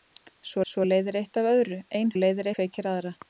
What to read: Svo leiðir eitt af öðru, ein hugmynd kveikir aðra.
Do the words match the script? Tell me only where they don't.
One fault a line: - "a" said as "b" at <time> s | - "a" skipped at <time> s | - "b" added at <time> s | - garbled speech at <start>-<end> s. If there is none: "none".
- "svo" added at 0.7 s
- "hugmynd" said as "leiðir" at 2.2 s